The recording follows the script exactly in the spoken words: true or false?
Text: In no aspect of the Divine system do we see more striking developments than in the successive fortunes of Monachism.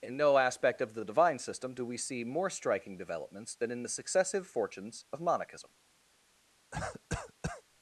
true